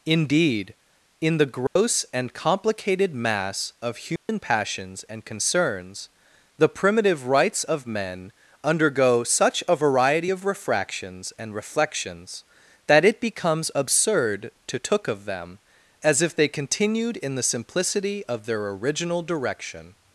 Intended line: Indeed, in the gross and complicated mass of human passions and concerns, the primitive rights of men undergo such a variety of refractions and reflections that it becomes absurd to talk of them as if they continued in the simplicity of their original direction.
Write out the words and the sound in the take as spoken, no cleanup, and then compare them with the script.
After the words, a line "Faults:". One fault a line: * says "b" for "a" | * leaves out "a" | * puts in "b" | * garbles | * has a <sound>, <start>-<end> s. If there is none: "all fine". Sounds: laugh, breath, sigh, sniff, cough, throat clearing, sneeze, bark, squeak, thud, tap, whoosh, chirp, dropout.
Indeed, in the gross and complicated mass of human passions and concerns, the primitive rights of men undergo such a variety of refractions and reflections that it becomes absurd to took of them as if they continued in the simplicity of their original direction.
Faults:
* has a dropout, 1.7-1.8 s
* has a dropout, 4.2-4.3 s
* says "took" for "talk"